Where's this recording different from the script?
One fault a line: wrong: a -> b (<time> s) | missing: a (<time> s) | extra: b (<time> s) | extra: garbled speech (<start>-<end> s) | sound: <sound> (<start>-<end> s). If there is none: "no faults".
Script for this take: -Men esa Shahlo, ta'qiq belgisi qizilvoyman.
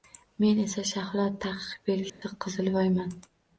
sound: dropout (2.1-2.2 s)